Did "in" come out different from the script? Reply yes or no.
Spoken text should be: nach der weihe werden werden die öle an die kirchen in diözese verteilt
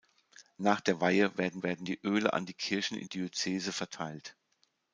no